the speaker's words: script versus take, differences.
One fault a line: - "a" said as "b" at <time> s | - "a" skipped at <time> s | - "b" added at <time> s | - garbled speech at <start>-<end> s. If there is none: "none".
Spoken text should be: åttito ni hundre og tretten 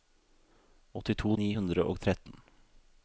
none